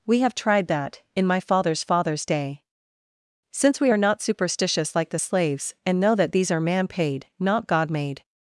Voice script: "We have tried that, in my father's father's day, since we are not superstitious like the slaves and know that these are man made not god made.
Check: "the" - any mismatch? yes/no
no